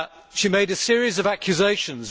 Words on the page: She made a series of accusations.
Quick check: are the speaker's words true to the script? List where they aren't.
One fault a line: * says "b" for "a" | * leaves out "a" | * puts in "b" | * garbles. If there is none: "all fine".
all fine